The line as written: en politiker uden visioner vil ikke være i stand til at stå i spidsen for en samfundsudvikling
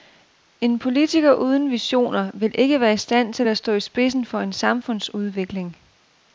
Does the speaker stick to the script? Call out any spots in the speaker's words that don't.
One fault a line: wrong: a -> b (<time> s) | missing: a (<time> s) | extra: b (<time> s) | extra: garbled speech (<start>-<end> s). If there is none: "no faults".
no faults